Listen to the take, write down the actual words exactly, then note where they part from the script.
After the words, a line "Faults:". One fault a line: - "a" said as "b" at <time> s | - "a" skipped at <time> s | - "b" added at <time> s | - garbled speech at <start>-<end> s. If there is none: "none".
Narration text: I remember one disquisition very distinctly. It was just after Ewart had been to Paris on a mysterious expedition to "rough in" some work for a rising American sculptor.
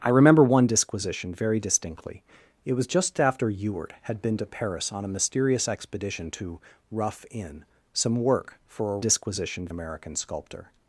I remember one disquisition very distinctly. It was just after Ewart had been to Paris on a mysterious expedition to "rough in" some work for a disquisition American sculptor.
Faults:
- "rising" said as "disquisition" at 9.0 s